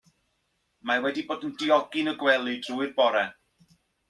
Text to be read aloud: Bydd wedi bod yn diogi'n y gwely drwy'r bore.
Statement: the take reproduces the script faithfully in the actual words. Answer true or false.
false